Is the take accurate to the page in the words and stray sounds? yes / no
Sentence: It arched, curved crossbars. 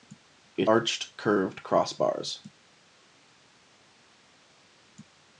yes